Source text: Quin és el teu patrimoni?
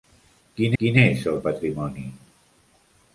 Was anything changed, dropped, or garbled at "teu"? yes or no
yes